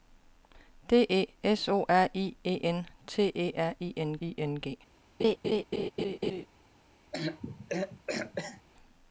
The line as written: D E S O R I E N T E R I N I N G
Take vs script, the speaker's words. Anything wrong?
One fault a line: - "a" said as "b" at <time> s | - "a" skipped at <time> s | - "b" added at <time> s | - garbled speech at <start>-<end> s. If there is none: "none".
none